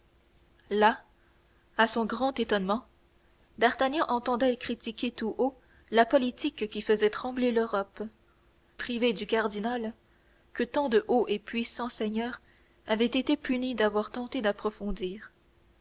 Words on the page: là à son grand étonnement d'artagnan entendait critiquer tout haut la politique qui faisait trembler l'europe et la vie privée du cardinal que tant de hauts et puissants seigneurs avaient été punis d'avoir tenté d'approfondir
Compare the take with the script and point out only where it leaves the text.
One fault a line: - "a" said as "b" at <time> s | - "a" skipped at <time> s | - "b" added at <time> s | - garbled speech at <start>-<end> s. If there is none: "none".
- "et la vie" skipped at 8.0 s